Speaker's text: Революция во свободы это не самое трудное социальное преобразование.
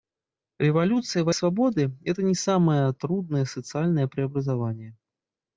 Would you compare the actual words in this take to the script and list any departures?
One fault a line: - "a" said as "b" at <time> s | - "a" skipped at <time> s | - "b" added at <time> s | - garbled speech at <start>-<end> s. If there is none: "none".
none